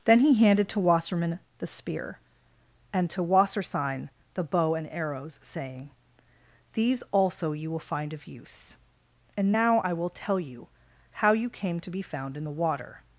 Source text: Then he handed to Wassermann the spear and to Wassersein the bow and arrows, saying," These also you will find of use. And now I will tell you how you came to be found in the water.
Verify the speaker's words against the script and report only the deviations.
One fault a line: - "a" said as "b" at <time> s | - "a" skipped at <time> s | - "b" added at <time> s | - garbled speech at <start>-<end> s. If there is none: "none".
none